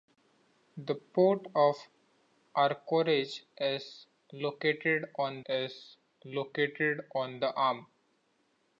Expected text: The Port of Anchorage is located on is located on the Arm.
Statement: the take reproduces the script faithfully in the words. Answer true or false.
true